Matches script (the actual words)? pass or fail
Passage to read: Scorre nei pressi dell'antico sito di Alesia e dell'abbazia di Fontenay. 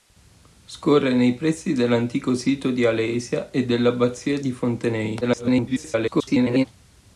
fail